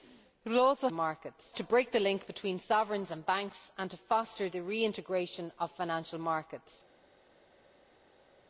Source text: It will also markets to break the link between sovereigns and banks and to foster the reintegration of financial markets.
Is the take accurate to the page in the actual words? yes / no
yes